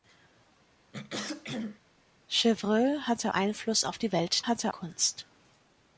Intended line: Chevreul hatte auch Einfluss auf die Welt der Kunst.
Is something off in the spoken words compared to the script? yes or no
yes